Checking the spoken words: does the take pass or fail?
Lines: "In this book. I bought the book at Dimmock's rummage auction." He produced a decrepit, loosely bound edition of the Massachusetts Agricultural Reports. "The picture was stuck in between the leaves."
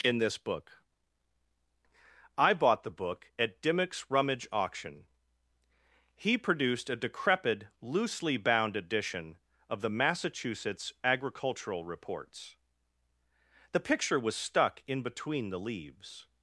pass